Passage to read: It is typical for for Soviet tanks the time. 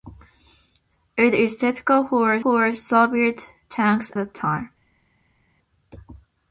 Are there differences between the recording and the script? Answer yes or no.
no